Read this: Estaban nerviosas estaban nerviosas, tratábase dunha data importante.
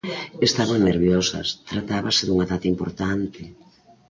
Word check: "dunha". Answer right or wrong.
right